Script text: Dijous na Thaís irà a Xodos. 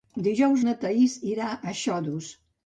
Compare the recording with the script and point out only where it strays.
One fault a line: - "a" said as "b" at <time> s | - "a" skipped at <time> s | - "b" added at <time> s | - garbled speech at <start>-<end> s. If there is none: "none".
none